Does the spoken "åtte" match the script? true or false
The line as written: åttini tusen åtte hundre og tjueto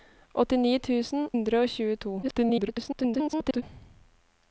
false